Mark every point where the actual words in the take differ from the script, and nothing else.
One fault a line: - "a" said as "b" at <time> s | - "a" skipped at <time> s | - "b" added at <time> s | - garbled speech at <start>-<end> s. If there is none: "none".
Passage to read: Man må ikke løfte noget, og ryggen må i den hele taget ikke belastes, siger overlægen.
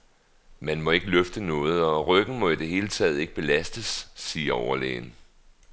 - "den" said as "det" at 2.5 s